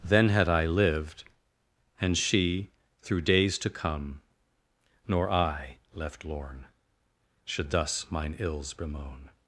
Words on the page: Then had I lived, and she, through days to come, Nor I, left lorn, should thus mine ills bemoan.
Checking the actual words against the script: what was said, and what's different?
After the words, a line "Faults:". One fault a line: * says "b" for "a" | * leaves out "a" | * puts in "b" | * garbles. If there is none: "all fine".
Then had I lived, and she, through days to come, Nor I, left lorn, should thus mine ills bemoan.
Faults:
all fine